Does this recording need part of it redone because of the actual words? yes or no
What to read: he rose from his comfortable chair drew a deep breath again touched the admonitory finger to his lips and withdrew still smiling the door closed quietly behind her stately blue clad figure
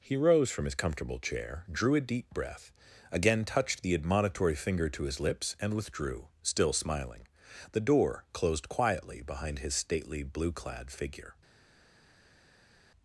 yes